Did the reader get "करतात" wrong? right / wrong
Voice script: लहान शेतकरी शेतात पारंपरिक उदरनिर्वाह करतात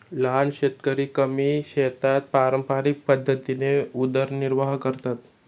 right